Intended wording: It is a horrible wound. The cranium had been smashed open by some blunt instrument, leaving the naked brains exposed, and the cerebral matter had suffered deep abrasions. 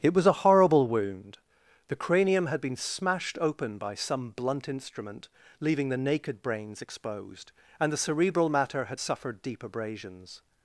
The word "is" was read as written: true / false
false